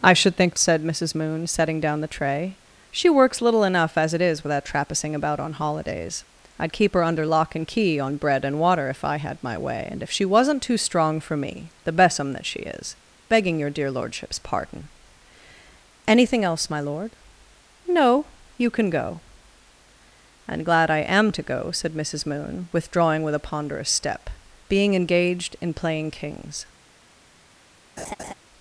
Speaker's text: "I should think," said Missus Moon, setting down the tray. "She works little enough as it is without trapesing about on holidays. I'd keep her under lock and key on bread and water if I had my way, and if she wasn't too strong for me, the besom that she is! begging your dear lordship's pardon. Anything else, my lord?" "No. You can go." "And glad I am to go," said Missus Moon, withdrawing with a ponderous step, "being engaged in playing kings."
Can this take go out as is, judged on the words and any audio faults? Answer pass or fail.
fail